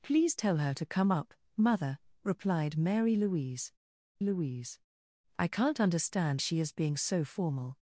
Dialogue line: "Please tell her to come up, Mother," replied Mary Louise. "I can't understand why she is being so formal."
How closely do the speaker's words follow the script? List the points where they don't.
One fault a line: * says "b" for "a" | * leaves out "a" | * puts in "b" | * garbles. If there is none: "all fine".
* puts in "Louise"
* leaves out "why"